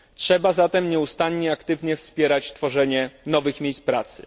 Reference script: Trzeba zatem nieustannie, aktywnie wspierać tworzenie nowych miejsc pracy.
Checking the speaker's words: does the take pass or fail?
pass